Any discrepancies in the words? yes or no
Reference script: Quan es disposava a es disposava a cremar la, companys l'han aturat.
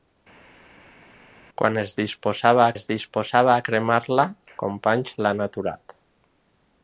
no